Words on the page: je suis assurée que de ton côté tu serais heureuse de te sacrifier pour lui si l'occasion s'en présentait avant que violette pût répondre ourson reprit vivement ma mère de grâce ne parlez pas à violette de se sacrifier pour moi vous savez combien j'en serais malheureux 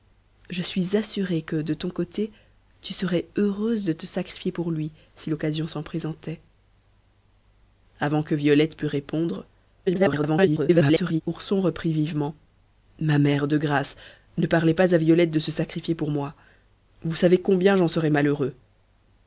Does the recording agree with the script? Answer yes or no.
no